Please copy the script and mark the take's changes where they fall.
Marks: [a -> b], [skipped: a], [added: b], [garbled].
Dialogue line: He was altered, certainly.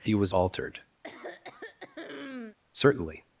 He was altered, certainly.